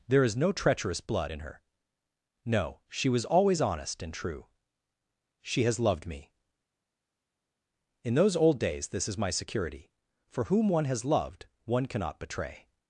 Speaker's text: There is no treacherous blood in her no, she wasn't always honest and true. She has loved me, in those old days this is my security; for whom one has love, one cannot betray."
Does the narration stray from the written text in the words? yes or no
yes